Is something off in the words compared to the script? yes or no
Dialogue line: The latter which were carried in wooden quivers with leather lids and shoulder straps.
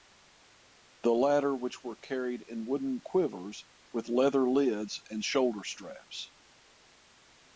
no